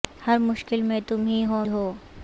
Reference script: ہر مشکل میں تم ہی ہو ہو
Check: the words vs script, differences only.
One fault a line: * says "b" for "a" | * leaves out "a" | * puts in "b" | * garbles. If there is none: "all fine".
all fine